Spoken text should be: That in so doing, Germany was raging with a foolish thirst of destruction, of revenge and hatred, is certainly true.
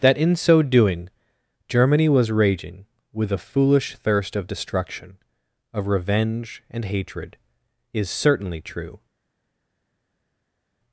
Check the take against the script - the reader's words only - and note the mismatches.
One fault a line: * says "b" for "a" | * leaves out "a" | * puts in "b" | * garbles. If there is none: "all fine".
all fine